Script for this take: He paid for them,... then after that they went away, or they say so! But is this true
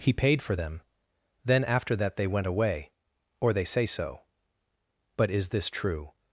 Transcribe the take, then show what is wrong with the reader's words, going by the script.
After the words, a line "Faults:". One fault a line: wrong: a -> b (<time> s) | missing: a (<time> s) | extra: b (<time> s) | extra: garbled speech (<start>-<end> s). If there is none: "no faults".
He paid for them,... then after that they went away, or they say so! But is this true
Faults:
no faults